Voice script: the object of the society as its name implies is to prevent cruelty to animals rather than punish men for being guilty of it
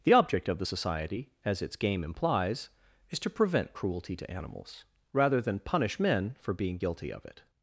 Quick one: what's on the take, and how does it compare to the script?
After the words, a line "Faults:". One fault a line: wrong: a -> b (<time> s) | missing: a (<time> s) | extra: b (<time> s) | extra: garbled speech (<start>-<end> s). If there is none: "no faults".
the object of the society as its game implies is to prevent cruelty to animals rather than punish men for being guilty of it
Faults:
wrong: name -> game (1.7 s)